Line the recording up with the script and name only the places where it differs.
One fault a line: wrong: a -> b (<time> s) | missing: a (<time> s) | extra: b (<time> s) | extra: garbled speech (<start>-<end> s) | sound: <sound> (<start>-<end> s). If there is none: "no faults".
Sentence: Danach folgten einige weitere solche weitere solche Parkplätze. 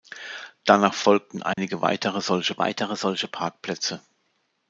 sound: dropout (1.5-1.6 s)